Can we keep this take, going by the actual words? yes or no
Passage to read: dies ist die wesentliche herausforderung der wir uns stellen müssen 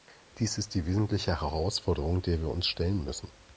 yes